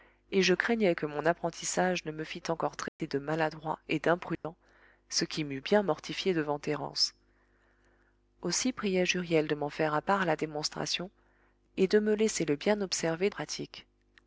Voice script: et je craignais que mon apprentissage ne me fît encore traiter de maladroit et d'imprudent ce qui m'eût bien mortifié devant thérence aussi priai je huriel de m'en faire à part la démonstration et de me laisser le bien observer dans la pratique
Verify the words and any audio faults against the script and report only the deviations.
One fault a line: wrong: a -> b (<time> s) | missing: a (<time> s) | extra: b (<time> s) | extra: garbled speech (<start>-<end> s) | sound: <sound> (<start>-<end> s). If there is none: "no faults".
sound: dropout (2.9-3.0 s)
sound: dropout (4.4-4.4 s)
missing: dans la (13.3 s)